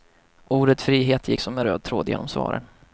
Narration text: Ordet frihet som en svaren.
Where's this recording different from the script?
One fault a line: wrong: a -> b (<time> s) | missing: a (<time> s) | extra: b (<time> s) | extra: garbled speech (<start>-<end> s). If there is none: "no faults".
extra: gick (1.3 s)
extra: röd tråd genom (1.6 s)